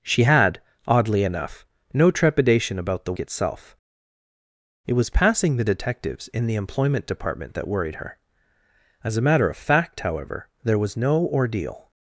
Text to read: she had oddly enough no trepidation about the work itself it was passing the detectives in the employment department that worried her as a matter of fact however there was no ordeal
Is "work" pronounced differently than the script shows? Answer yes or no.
yes